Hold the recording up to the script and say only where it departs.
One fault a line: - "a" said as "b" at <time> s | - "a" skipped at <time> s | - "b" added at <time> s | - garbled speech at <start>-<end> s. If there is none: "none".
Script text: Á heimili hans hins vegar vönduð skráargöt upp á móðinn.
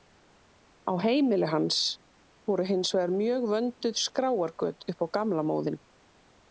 - "voru" added at 2.5 s
- "mjög" added at 3.2 s
- "gamla" added at 5.2 s